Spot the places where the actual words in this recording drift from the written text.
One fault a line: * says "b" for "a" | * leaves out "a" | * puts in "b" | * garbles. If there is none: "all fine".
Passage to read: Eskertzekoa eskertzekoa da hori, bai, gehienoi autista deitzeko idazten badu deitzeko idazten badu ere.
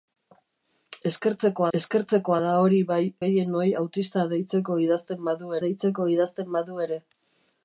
all fine